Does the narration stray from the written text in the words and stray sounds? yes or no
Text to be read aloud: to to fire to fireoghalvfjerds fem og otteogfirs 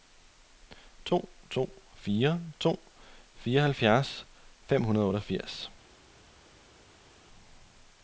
yes